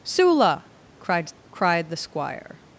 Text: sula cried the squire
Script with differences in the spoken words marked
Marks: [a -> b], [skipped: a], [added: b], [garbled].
sula cried [added: cried] the squire